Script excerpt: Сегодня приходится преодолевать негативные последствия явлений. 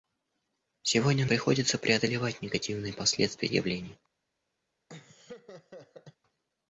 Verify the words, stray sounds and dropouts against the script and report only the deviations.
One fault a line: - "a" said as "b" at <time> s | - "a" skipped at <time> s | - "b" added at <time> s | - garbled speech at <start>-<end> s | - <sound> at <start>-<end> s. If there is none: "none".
- laugh at 4.9-6.2 s